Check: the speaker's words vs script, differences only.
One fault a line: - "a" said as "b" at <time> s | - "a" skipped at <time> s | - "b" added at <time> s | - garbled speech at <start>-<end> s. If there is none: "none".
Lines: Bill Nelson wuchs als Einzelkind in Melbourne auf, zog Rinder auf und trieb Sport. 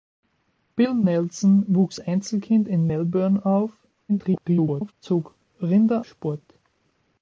- "als" skipped at 2.0 s
- garbled speech at 4.1-4.9 s
- "auf und trieb" skipped at 6.1 s